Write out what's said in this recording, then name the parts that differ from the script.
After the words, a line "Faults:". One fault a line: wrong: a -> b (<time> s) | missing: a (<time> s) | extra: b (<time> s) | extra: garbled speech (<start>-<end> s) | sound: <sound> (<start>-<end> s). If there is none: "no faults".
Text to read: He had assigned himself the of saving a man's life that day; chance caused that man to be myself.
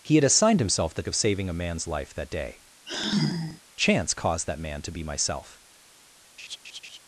He had assigned himself the of saving a man's life that day; chance caused that man to be myself.
Faults:
sound: sigh (2.9-3.6 s)
sound: laugh (6.4-7.0 s)